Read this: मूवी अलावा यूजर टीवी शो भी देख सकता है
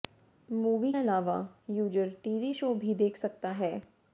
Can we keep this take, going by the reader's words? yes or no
yes